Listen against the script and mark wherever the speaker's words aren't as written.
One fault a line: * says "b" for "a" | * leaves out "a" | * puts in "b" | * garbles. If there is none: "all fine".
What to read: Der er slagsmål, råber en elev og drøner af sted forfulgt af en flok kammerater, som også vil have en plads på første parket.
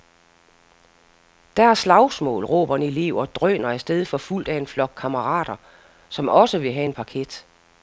* leaves out "plads på første"